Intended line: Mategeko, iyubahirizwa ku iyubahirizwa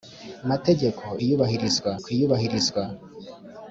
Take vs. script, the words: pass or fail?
pass